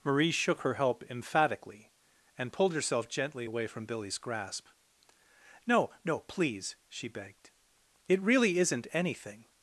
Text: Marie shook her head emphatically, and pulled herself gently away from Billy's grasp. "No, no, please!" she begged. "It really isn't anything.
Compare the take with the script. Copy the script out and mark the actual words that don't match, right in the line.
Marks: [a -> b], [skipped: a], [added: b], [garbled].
Marie shook her [head -> help] emphatically, and pulled herself gently away from Billy's grasp. "No, no, please!" she begged. "It really isn't anything.